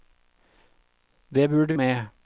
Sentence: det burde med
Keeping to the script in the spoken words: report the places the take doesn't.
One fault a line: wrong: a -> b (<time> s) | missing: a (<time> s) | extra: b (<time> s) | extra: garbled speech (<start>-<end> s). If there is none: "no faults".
no faults